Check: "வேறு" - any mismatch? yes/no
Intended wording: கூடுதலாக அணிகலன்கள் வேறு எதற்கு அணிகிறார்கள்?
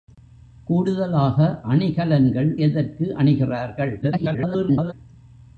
yes